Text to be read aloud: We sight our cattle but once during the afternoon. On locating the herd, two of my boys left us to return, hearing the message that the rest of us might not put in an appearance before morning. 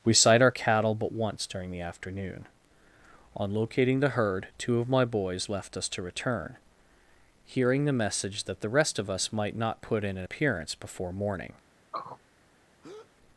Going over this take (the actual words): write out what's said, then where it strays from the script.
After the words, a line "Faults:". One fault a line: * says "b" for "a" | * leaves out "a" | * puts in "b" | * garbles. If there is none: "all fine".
We sight our cattle but once during the afternoon. On locating the herd, two of my boys left us to return, hearing the message that the rest of us might not put in an appearance before morning.
Faults:
all fine